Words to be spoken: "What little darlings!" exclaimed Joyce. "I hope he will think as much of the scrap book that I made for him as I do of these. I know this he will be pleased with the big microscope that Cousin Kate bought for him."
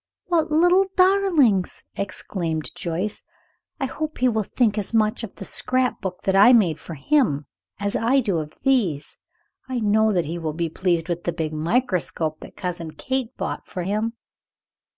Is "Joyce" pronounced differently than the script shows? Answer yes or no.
no